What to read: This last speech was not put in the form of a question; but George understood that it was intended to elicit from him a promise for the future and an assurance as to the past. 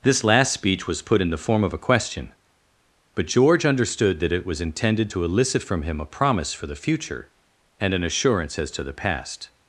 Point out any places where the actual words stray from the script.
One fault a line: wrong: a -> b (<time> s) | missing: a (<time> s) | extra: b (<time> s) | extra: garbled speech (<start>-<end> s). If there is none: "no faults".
missing: not (1.0 s)